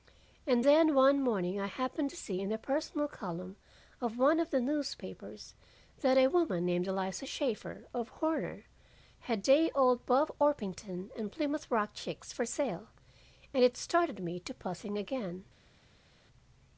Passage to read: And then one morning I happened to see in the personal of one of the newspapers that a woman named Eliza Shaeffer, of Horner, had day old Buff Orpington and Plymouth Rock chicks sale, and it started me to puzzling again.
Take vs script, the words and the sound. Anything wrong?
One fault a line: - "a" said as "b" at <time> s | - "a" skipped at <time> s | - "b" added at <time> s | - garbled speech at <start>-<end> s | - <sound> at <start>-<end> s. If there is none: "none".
- "column" added at 3.1 s
- "for" added at 12.3 s